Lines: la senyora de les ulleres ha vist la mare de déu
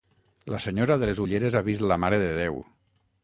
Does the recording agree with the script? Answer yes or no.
yes